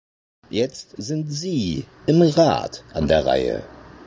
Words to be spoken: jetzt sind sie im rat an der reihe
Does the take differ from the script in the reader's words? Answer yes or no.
no